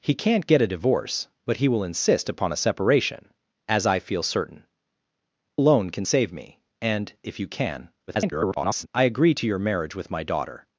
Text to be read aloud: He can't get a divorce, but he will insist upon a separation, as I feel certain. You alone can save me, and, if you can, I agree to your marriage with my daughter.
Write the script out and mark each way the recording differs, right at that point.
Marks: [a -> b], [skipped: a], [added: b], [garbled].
He can't get a divorce, but he will insist upon a separation, as I feel certain. [skipped: You] alone can save me, and, if you can, [garbled] I agree to your marriage with my daughter.